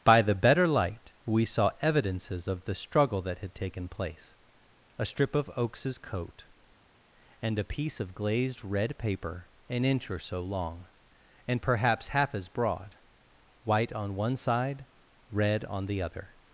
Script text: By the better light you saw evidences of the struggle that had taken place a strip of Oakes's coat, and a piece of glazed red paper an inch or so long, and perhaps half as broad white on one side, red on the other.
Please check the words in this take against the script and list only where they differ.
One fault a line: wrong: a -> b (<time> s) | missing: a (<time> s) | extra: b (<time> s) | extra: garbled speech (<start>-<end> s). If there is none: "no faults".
wrong: you -> we (1.2 s)